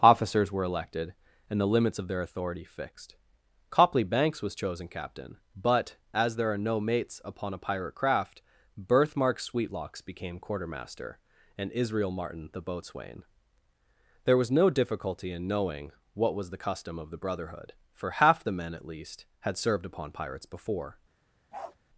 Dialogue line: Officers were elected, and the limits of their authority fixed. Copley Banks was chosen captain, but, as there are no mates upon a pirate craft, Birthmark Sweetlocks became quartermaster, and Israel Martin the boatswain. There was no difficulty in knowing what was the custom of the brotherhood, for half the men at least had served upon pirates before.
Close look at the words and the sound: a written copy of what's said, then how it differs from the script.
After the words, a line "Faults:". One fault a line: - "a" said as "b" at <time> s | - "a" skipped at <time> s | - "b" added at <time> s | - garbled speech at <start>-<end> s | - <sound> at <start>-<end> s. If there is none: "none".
Officers were elected, and the limits of their authority fixed. Copley Banks was chosen captain, but, as there are no mates upon a pirate craft, Birthmark Sweetlocks became quartermaster, and Israel Martin the boatswain. There was no difficulty in knowing what was the custom of the brotherhood, for half the men at least had served upon pirates before.
Faults:
- bark at 21.5-21.8 s